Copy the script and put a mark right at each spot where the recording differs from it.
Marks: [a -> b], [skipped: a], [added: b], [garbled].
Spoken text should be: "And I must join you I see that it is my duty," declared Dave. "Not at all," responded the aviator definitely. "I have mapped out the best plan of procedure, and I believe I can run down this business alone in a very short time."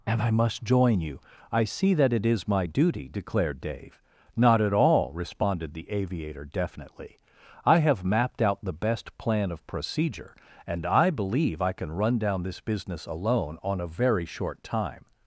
"And I must join you I see that it is my duty," declared Dave. "Not at all," responded the aviator definitely. "I have mapped out the best plan of procedure, and I believe I can run down this business alone [in -> on] a very short time."